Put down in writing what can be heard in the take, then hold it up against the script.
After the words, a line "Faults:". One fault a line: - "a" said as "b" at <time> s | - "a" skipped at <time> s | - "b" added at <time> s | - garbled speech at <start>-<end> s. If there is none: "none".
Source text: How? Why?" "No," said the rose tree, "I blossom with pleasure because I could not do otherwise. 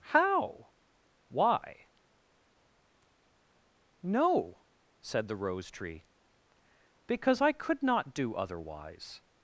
How? Why?" "No," said the rose tree, "because I could not do otherwise.
Faults:
- "I blossom with pleasure" skipped at 6.0 s